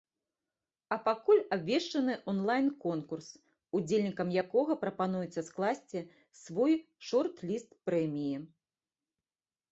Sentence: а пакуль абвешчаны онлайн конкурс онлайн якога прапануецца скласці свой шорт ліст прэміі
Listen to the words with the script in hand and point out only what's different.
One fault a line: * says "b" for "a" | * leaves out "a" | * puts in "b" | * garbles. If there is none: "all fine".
* says "удзельнікам" for "онлайн"